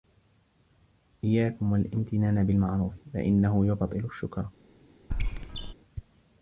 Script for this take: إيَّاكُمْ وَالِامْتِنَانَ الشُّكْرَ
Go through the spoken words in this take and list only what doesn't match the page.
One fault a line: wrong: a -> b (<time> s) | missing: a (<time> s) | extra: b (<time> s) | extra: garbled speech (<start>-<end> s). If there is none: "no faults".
extra: بِالْمَعْرُوفِ فَإِنَّهُ يُبْطِلُ (2.4 s)